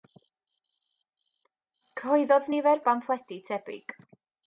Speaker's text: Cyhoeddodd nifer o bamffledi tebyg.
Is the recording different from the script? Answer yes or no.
no